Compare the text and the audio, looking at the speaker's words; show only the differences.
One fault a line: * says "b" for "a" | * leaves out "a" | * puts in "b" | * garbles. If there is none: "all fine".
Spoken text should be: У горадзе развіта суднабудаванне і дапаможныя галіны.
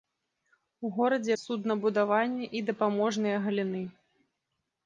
* leaves out "развіта"